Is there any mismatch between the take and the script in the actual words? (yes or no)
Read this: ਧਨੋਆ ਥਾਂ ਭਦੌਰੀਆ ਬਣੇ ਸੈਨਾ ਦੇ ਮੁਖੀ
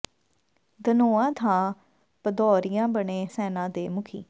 no